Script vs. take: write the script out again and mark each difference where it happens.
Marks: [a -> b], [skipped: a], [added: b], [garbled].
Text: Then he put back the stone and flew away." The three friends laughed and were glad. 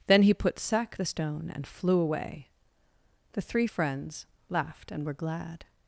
Then he put [back -> sack] the stone and flew away." The three friends laughed and were glad.